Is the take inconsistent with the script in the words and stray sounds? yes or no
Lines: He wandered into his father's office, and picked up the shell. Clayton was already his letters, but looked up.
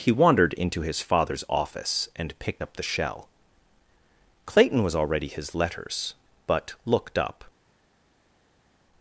no